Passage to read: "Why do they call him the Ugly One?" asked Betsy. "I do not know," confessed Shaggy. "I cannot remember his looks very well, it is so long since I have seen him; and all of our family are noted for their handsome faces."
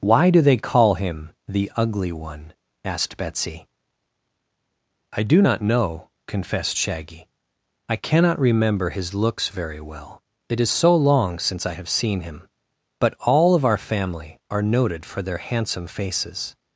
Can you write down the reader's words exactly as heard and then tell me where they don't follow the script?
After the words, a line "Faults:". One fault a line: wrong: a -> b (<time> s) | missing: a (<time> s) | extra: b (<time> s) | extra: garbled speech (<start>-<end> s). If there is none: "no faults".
"Why do they call him the Ugly One?" asked Betsy. "I do not know," confessed Shaggy. "I cannot remember his looks very well, it is so long since I have seen him; but all of our family are noted for their handsome faces."
Faults:
wrong: and -> but (13.0 s)